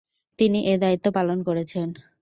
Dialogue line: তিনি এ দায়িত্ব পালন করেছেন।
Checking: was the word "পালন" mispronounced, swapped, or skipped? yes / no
no